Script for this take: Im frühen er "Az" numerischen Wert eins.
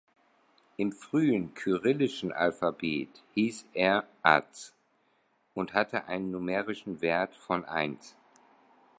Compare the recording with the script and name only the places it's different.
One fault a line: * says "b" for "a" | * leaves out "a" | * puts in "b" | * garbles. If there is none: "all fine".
* puts in "kyrillischen Alphabet hieß"
* puts in "und hatte einen"
* puts in "von"